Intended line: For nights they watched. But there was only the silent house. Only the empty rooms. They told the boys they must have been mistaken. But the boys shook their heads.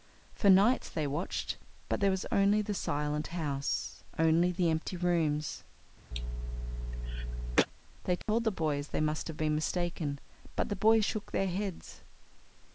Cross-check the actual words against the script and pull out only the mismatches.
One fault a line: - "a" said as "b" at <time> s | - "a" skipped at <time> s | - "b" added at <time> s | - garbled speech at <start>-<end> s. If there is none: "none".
none